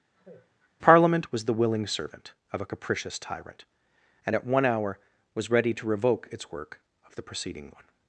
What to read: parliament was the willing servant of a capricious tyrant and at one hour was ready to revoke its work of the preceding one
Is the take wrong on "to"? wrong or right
right